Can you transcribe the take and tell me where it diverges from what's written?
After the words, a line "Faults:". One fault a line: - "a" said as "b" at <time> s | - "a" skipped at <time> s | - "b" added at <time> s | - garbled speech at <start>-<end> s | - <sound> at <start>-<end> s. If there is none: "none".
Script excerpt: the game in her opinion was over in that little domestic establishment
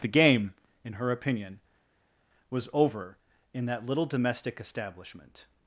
the game in her opinion was over in that little domestic establishment
Faults:
none